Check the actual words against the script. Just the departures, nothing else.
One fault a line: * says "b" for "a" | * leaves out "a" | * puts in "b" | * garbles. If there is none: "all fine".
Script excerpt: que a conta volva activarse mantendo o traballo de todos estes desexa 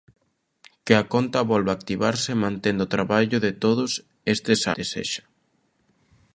all fine